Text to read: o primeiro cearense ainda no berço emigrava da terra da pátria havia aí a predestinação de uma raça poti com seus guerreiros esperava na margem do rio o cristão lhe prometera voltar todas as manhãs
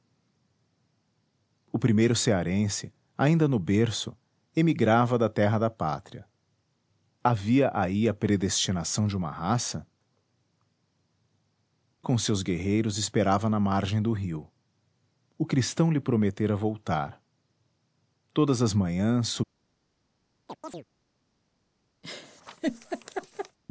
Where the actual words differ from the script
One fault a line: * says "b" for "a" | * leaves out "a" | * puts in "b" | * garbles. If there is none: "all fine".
* leaves out "poti"